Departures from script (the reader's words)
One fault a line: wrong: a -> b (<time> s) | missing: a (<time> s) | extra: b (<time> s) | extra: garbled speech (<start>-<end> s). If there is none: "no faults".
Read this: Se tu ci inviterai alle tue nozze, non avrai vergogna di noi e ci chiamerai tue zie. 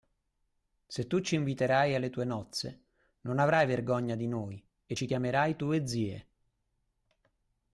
no faults